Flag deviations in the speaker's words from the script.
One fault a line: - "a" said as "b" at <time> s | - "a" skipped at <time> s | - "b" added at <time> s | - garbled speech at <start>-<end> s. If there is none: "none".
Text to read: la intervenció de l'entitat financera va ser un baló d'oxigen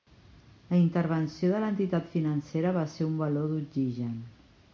none